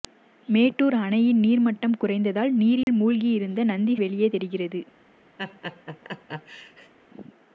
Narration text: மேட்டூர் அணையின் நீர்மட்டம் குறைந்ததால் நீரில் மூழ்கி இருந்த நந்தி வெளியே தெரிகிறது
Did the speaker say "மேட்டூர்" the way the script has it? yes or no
yes